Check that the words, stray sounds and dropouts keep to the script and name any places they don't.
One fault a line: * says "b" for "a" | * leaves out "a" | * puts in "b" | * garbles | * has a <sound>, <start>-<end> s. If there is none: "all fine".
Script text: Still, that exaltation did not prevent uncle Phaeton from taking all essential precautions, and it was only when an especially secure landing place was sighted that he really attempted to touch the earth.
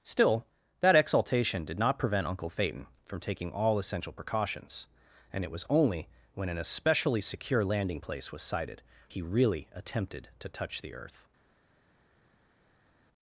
* leaves out "that"